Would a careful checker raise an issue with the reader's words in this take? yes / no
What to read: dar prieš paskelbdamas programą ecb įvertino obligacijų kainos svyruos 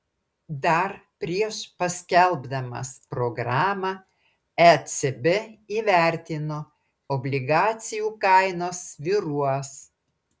no